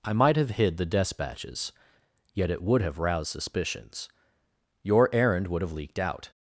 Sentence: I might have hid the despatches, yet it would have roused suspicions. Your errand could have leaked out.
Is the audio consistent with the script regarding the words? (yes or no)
no